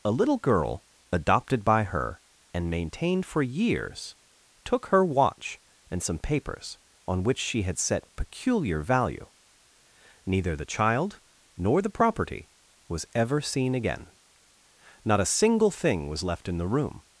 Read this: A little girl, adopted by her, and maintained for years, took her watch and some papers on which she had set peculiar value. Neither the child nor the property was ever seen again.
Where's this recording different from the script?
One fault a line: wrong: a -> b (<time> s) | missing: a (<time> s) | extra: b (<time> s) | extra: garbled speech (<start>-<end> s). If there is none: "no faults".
extra: Not a single thing was left in the room (15.1 s)